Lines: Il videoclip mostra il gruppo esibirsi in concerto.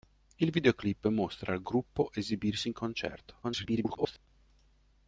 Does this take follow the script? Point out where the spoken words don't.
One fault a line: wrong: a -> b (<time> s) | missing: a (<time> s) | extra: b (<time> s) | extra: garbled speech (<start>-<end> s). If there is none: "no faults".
extra: garbled speech (3.4-4.3 s)